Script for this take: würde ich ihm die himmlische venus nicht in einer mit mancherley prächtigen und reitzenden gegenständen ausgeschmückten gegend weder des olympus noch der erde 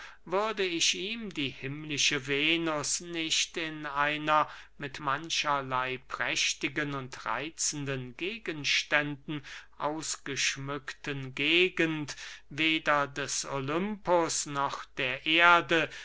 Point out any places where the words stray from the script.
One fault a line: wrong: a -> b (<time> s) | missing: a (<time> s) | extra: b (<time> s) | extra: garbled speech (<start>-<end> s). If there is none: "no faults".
no faults